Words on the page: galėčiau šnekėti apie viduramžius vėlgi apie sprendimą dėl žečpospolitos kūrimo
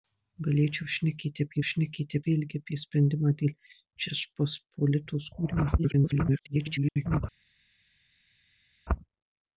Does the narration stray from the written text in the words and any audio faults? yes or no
yes